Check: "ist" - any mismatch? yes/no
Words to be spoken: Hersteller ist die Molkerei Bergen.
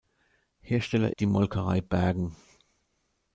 yes